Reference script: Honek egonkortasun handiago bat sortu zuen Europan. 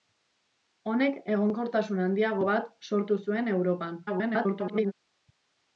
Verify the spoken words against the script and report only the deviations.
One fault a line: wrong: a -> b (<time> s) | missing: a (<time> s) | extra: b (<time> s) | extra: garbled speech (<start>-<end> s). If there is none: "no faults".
extra: garbled speech (4.1-4.9 s)